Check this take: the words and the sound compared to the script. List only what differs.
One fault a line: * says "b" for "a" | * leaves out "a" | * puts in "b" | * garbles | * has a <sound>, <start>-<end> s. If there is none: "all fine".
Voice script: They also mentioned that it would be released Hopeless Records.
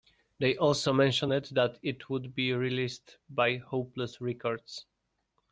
* puts in "by"